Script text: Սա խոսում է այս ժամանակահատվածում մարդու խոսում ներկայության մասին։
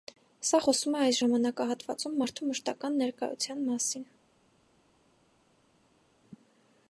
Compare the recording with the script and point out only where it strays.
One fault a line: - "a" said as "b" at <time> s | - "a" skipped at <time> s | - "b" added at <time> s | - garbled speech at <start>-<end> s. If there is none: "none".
- "խոսում" said as "մշտական" at 2.5 s